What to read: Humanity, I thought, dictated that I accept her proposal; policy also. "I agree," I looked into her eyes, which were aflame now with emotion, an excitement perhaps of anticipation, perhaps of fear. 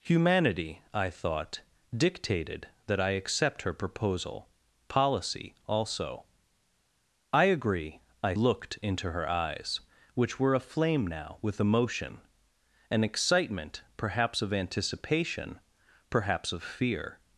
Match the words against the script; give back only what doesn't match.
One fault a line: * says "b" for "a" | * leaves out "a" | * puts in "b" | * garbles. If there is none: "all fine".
all fine